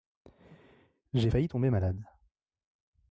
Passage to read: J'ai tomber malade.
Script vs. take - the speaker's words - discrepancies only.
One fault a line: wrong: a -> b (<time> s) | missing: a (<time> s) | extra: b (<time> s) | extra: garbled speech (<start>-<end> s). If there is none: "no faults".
extra: failli (1.2 s)